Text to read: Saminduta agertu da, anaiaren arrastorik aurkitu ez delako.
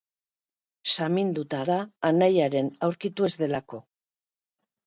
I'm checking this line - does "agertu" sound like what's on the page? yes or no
no